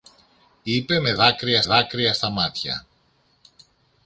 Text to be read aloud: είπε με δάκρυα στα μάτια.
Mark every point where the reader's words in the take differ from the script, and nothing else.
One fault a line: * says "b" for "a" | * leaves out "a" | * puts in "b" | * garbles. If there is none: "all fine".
* puts in "δάκρυα"